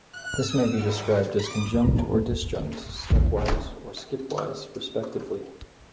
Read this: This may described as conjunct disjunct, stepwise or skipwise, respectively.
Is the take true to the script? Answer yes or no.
no